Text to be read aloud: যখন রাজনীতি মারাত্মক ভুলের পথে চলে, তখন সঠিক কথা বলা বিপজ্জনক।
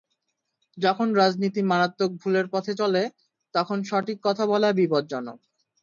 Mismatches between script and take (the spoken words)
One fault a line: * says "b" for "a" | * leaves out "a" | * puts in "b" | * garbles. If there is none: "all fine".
all fine